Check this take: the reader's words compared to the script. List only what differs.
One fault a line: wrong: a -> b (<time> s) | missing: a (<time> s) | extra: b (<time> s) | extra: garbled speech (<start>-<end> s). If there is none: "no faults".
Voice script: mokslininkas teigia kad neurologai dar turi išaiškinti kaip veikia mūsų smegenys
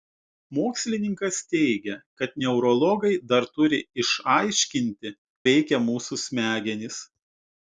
missing: kaip (5.2 s)